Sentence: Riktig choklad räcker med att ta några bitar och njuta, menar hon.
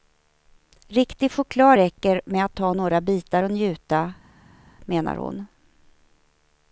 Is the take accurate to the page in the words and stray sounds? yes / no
yes